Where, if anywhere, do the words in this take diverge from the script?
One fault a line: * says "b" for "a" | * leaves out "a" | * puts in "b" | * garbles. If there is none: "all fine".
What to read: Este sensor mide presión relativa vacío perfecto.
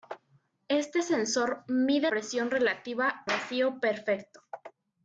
all fine